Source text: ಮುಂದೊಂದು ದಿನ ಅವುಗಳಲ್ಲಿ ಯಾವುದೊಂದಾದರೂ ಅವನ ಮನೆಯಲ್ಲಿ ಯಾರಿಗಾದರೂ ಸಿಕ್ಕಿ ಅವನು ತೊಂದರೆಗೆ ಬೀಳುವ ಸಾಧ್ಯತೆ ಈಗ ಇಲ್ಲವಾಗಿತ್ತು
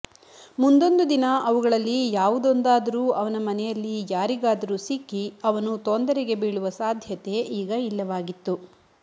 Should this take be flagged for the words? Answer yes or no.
no